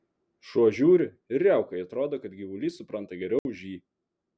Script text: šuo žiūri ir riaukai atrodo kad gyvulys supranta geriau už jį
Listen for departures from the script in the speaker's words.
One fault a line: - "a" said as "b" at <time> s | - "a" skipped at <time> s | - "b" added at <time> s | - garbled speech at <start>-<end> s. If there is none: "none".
none